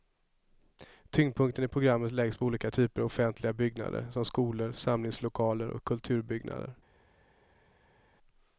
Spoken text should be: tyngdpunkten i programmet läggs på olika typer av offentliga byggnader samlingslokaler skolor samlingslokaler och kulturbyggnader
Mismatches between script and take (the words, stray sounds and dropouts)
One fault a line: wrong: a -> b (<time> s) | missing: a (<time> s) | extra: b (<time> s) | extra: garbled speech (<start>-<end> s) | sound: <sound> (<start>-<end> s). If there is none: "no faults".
wrong: samlingslokaler -> som (4.1 s)